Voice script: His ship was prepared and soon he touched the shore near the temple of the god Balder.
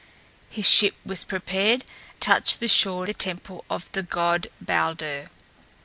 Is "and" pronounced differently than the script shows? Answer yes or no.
yes